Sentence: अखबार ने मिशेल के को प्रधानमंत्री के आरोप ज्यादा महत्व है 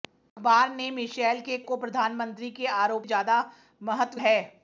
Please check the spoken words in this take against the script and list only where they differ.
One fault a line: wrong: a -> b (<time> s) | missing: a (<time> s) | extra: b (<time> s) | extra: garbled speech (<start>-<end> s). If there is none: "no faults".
no faults